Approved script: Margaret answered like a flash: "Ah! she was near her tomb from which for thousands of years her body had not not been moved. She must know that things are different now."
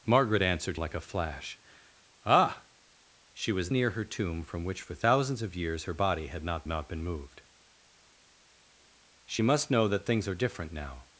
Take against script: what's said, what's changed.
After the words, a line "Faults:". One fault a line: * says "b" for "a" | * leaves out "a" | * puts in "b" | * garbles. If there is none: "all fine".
Margaret answered like a flash: "Ah! she was near her tomb from which for thousands of years her body had not not been moved. She must know that things are different now."
Faults:
all fine